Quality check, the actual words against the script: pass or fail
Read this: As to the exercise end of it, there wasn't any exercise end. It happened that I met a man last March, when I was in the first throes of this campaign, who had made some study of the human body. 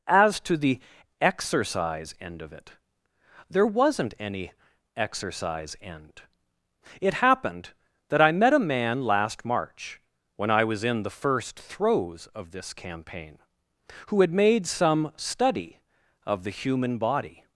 pass